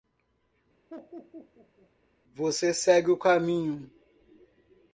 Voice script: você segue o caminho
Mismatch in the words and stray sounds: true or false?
true